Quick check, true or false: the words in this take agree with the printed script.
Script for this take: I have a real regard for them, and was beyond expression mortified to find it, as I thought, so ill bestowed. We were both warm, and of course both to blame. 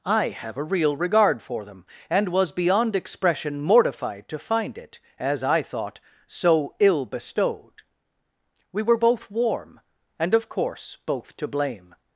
true